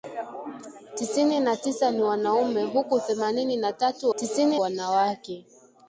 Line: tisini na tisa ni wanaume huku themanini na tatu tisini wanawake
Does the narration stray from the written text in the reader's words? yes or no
no